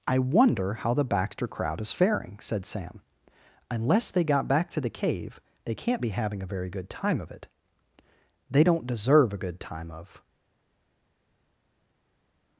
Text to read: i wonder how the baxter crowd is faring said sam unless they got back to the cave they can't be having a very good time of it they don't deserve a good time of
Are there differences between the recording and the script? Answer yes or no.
no